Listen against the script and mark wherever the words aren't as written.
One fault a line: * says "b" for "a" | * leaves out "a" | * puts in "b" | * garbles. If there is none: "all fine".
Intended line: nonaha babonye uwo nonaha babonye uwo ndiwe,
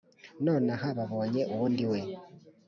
* leaves out "nonaha babonye uwo"